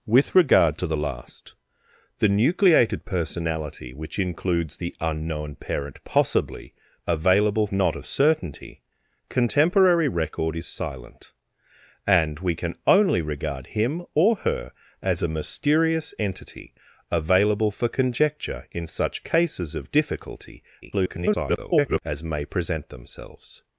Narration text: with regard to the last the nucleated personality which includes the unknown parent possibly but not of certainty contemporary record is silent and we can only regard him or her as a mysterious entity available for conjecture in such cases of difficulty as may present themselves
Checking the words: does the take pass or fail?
fail